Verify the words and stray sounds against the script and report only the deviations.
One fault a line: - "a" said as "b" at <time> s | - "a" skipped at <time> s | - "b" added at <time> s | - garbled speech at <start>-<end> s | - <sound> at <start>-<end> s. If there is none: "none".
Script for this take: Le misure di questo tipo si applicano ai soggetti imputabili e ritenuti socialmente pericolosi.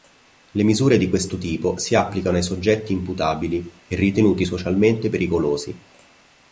none